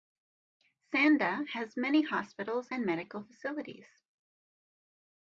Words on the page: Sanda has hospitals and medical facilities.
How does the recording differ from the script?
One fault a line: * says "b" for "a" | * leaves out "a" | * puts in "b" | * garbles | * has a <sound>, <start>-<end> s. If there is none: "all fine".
* puts in "many"